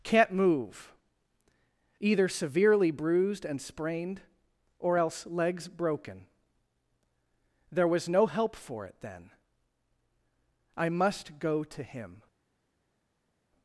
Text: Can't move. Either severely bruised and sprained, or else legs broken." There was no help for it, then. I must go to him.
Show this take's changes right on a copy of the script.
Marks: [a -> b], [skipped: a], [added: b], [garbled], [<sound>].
Can't move. Either severely bruised and sprained, or else legs broken." There was no help for it, then. I must go to him.